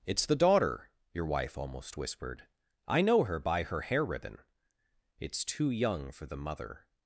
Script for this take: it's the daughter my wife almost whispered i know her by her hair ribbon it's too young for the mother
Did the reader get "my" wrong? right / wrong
wrong